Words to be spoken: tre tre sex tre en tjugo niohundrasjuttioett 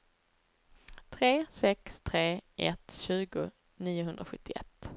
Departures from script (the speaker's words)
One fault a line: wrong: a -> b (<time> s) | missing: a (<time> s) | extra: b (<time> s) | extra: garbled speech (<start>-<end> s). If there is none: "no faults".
missing: tre (1.4 s)
wrong: en -> ett (2.6 s)